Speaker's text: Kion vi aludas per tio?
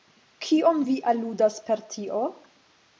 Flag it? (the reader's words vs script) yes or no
no